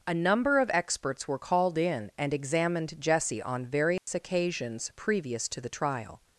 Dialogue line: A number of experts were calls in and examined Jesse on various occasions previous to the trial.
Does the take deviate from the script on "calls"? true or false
true